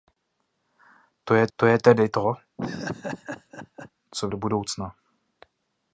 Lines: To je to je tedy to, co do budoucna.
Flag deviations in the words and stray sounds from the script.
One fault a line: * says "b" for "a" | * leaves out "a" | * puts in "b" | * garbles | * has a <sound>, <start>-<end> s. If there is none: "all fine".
* has a laugh, 2.6-3.9 s